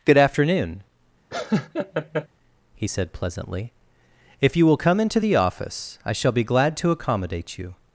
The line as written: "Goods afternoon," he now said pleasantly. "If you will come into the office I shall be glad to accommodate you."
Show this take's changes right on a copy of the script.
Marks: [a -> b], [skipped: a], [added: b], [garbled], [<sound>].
["Goods -> Good] afternoon," [laugh] he [skipped: now] said pleasantly. "If you will come into the office I shall be glad to accommodate you."